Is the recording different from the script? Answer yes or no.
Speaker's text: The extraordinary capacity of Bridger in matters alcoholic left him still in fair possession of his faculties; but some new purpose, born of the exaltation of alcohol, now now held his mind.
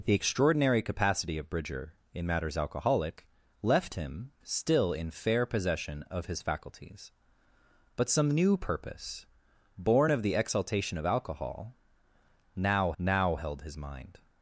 no